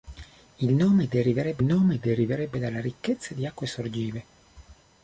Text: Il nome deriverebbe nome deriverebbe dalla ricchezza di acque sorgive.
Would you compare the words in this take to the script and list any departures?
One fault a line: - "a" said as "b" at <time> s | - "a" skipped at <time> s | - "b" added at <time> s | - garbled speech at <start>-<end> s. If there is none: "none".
none